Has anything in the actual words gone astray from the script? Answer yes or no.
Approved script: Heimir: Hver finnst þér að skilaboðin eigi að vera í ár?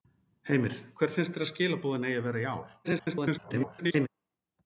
yes